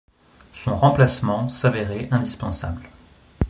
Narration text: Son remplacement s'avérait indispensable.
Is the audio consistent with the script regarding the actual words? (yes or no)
yes